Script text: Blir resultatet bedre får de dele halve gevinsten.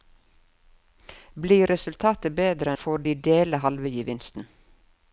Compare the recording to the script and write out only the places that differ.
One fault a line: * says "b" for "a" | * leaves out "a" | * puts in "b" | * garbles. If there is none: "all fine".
all fine